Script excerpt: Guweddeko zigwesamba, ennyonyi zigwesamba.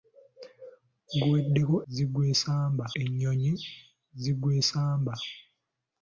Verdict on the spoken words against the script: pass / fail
pass